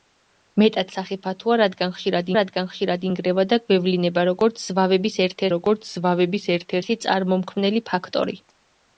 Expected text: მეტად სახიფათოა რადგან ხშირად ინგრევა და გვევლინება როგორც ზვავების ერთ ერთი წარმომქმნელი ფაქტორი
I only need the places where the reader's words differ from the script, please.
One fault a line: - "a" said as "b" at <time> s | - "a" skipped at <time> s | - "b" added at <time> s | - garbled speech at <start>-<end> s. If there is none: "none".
- "რადგან ხშირად" added at 2.4 s
- "როგორც ზვავების ერთ" added at 5.6 s